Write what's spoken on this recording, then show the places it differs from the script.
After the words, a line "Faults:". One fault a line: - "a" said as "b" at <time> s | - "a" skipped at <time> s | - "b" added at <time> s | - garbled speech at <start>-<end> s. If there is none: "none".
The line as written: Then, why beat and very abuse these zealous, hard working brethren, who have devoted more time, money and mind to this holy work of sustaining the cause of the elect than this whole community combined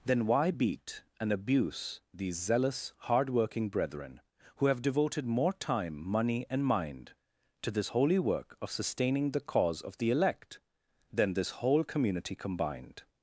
Then, why beat and abuse these zealous, hard working brethren, who have devoted more time, money and mind to this holy work of sustaining the cause of the elect than this whole community combined
Faults:
- "very" skipped at 1.3 s